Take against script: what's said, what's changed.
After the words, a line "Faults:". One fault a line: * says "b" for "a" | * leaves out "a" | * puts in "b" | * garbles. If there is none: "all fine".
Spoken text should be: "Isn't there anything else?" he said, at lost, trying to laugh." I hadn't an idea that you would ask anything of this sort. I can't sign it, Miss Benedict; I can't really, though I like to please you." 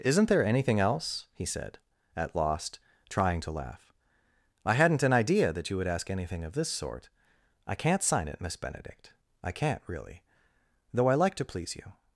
"Isn't there anything else?" he said, at lost, trying to laugh." I hadn't an idea that you would ask anything of this sort. I can't sign it, Miss Benedict; I can't really, though I like to please you."
Faults:
all fine